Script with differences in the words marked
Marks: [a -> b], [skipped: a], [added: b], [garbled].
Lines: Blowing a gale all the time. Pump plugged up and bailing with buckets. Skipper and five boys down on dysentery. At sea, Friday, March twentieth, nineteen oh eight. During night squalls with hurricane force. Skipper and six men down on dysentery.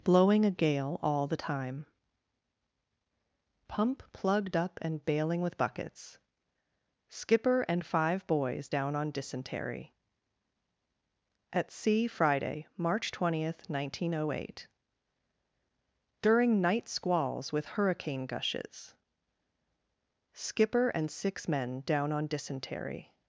Blowing a gale all the time. Pump plugged up and bailing with buckets. Skipper and five boys down on dysentery. At sea, Friday, March twentieth, nineteen oh eight. During night squalls with hurricane [force. -> gushes] Skipper and six men down on dysentery.